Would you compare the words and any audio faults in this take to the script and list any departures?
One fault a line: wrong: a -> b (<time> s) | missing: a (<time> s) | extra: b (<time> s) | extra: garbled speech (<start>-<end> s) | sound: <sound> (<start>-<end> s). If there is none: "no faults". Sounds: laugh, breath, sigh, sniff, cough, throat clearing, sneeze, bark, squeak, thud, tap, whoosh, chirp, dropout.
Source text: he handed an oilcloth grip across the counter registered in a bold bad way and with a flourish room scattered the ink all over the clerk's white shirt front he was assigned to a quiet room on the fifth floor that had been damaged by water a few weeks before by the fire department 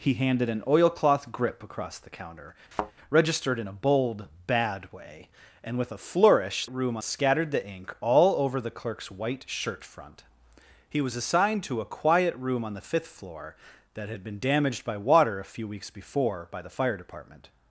sound: thud (2.7-2.9 s)